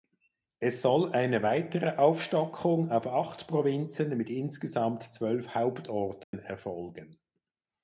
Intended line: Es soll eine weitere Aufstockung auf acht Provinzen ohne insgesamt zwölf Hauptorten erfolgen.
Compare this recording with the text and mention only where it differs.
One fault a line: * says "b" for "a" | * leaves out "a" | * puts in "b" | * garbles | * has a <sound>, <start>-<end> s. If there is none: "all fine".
* says "mit" for "ohne"
* has a dropout, 6.2-6.3 s